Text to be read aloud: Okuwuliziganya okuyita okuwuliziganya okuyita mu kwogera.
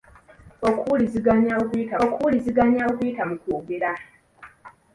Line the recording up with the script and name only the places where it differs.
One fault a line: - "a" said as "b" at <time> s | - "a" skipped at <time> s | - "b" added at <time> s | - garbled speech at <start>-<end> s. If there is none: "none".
none